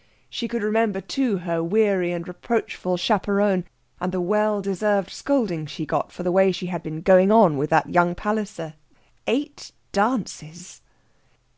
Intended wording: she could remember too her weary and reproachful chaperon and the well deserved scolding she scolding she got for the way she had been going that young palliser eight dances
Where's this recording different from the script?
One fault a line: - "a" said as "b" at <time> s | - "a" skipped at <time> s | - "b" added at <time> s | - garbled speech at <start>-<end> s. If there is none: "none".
- "scolding she" skipped at 5.8 s
- "on with" added at 7.3 s